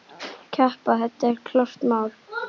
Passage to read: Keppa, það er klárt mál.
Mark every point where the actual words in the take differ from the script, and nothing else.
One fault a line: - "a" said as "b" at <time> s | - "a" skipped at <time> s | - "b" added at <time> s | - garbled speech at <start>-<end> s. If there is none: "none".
none